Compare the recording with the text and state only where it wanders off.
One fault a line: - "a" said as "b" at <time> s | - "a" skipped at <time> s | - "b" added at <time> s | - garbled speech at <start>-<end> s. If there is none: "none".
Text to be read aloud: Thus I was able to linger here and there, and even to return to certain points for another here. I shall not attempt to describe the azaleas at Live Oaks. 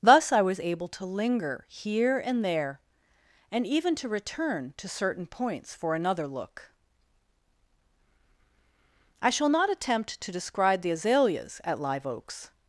- "here" said as "look" at 6.3 s